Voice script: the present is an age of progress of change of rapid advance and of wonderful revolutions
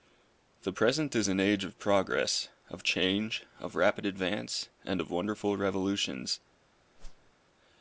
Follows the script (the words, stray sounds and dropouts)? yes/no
no